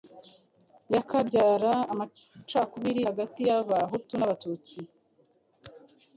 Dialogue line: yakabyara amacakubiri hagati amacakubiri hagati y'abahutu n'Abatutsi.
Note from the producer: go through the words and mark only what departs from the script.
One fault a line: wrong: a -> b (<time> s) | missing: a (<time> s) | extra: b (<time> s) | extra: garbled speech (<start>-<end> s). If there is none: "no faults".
missing: amacakubiri hagati (3.4 s)